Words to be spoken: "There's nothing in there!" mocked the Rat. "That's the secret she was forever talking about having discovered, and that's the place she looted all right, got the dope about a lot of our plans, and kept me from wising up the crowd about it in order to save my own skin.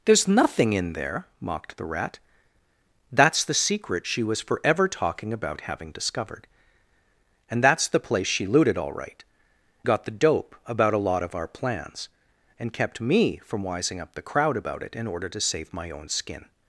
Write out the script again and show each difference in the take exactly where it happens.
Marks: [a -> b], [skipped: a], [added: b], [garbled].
"There's nothing in there!" mocked the Rat. "That's the secret she was forever talking about having discovered, and that's the place she looted all right, got the dope about a lot of our plans, and kept me from wising up the crowd about it in order to save my own skin.